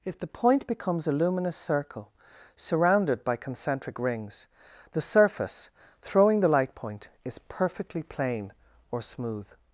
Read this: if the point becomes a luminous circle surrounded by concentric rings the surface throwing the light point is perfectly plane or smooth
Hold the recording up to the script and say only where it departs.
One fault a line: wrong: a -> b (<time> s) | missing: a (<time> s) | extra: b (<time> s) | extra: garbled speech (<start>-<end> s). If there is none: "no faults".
no faults